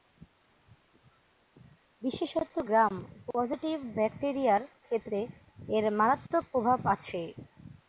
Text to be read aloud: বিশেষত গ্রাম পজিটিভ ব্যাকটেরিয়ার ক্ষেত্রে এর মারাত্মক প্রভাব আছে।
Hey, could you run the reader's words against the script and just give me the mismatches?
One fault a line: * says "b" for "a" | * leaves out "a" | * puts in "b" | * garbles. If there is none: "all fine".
all fine